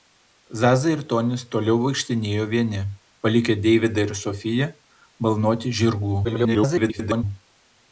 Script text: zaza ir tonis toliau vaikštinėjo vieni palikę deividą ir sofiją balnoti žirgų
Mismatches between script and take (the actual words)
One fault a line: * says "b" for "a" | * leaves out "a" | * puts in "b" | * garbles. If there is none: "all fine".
* garbles